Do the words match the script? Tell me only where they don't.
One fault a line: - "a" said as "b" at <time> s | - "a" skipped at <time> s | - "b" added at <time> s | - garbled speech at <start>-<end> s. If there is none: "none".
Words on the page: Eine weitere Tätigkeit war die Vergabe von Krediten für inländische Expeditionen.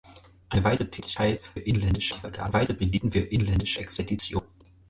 - "war" said as "inländische" at 1.5 s
- "von" said as "weitere" at 2.5 s